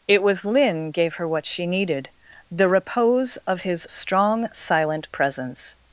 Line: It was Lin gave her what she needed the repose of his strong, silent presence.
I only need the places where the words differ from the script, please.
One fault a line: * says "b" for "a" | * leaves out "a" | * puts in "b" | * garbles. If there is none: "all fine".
all fine